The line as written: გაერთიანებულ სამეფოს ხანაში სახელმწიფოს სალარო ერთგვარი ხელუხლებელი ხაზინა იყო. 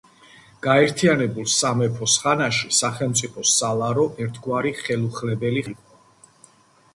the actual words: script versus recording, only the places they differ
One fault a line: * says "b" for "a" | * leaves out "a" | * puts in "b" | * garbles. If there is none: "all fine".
* leaves out "ხაზინა"